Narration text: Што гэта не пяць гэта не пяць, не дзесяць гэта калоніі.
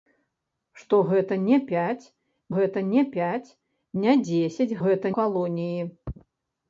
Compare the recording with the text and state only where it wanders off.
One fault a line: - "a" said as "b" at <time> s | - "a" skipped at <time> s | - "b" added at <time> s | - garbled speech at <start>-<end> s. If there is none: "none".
none